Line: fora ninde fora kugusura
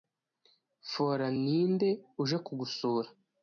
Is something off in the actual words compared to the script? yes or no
yes